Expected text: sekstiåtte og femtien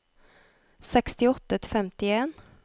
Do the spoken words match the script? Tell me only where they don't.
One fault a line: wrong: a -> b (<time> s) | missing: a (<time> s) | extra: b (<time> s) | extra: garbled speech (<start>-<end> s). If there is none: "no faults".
no faults